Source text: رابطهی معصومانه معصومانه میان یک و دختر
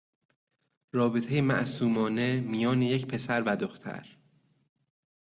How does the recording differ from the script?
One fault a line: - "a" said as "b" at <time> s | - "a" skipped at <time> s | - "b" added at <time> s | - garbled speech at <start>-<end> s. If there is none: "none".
- "معصومانه" skipped at 2.4 s
- "پسر" added at 3.1 s